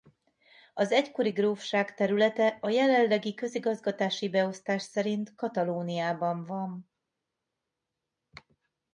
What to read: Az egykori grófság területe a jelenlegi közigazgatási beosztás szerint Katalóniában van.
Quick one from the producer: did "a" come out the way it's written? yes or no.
yes